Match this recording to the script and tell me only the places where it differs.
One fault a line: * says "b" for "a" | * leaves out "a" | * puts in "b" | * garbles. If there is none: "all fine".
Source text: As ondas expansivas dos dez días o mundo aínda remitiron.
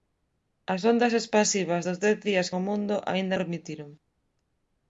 all fine